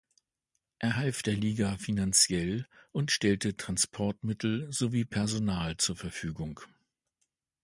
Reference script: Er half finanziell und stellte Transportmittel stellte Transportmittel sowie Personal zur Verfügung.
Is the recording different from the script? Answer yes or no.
yes